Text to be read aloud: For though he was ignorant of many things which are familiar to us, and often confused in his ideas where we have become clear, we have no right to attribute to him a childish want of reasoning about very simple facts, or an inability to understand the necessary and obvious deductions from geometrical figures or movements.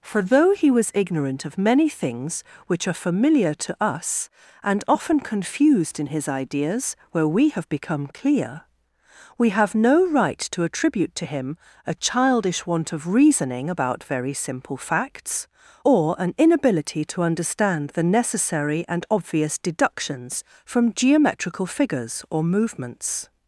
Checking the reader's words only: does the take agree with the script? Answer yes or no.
yes